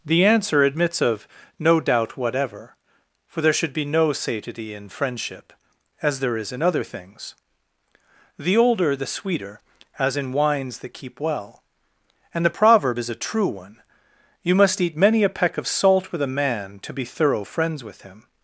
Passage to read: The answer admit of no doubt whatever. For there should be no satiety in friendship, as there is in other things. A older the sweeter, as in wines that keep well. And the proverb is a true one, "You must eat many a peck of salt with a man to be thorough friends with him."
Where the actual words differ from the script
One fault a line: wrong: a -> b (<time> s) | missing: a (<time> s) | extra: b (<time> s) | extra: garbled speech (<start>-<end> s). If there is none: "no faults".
wrong: admit -> admits (0.6 s)
wrong: A -> The (8.4 s)